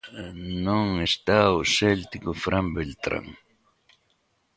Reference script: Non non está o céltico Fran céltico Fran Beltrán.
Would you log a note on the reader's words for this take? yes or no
yes